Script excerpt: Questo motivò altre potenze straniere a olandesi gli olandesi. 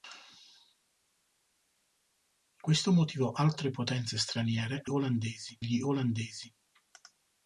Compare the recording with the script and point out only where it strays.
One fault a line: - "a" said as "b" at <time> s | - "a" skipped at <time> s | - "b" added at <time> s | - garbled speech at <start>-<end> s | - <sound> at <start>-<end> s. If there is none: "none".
none